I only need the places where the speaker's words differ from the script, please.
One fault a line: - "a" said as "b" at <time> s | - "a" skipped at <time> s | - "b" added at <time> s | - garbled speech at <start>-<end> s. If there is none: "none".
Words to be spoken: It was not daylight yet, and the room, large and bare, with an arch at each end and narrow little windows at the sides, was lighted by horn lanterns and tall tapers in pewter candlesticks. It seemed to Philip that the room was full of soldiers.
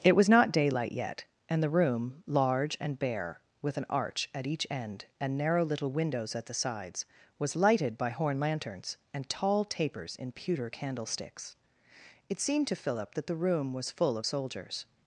none